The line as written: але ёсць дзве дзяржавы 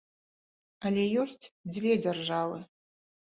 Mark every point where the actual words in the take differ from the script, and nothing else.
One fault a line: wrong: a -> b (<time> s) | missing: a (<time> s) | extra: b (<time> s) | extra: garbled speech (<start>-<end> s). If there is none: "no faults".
no faults